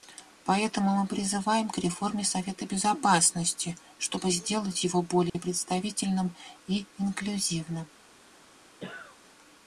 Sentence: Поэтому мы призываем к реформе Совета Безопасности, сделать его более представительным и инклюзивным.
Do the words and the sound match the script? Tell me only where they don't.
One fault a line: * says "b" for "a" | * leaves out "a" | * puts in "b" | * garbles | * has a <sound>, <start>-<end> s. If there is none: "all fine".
* puts in "чтобы"
* has a dropout, 5.3-5.3 s
* has a cough, 8.8-9.2 s